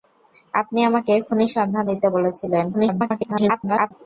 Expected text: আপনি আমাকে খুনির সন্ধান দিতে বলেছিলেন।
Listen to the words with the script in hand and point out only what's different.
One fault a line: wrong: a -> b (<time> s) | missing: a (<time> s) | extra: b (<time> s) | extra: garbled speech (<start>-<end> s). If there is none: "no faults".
extra: garbled speech (2.7-3.9 s)